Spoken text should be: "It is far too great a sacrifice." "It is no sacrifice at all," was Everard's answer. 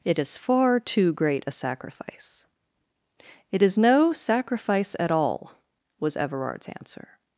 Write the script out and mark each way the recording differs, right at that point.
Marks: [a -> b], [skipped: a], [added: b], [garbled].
"It is far too great a sacrifice." "It is no sacrifice at all," was Everard's answer.